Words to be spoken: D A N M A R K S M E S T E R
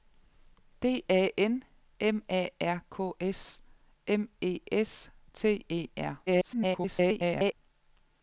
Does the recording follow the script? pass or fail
fail